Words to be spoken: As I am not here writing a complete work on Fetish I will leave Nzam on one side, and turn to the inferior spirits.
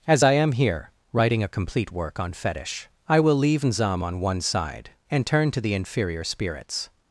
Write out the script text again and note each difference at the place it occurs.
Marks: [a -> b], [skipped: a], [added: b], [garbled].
As I am [skipped: not] here writing a complete work on Fetish I will leave Nzam on one side, and turn to the inferior spirits.